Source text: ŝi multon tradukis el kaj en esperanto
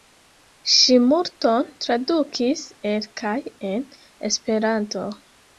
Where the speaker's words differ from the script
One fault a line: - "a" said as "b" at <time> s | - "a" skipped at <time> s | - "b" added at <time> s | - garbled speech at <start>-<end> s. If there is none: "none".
none